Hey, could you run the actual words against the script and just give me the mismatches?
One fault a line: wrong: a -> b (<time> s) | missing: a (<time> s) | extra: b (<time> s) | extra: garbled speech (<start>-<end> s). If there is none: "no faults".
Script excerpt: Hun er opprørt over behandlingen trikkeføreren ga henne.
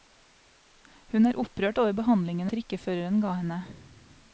no faults